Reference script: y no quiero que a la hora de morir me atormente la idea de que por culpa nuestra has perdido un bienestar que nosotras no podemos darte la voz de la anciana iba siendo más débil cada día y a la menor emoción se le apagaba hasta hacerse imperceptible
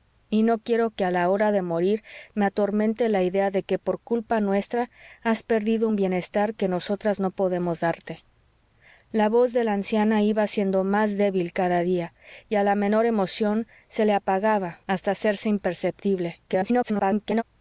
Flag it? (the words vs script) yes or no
yes